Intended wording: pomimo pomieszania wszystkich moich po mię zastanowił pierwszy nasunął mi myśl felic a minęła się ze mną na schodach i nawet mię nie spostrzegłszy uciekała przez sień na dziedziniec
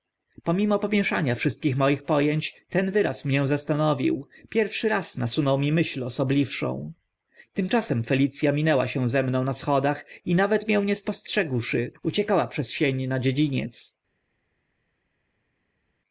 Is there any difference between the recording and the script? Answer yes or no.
yes